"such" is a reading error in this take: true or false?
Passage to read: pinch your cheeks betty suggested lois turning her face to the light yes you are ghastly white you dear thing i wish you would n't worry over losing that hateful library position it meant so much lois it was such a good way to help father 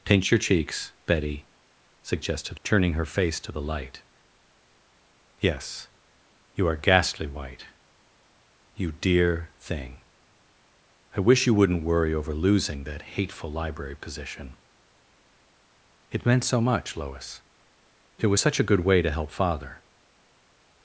false